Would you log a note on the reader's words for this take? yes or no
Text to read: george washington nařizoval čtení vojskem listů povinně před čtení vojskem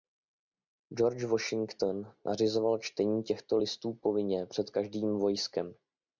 yes